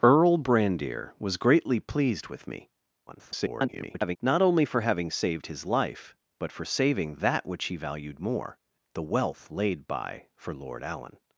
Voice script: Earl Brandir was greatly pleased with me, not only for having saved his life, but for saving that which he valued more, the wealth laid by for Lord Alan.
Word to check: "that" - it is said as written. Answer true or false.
true